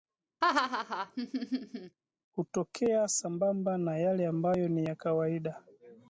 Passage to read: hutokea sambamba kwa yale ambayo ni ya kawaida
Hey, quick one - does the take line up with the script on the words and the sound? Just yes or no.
no